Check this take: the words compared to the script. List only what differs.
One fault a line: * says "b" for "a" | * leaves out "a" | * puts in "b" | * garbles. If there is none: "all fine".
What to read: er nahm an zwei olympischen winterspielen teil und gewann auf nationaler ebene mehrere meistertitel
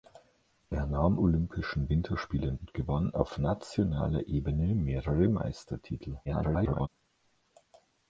* leaves out "an zwei"
* leaves out "teil"
* garbles